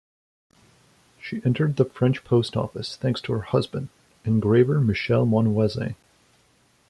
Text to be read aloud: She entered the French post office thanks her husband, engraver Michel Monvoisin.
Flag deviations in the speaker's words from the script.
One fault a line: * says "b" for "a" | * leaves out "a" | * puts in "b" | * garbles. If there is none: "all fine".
* puts in "to"